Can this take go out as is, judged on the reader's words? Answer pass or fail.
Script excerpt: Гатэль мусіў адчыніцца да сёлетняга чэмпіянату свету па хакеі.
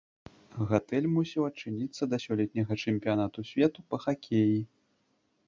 pass